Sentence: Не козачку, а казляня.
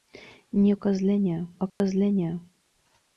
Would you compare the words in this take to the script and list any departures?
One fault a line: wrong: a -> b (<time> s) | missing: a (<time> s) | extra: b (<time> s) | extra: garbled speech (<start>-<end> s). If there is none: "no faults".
wrong: козачку -> казляня (0.7 s)